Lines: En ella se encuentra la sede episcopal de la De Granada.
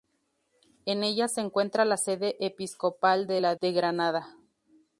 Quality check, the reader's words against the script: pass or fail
pass